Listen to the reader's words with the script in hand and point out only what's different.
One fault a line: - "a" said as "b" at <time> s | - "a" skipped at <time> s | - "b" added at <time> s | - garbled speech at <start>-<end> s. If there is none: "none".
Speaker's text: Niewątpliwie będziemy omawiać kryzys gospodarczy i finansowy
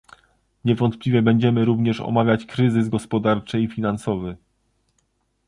- "również" added at 1.6 s